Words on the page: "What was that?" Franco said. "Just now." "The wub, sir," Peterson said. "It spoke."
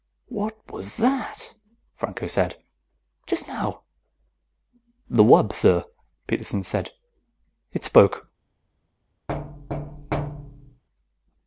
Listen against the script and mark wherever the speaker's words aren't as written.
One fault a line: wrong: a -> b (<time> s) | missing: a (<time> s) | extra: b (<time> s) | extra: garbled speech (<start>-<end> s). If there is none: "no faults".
no faults